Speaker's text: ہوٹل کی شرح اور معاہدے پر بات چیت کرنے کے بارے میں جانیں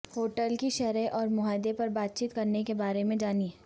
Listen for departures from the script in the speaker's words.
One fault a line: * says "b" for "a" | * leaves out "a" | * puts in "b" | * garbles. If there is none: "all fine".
all fine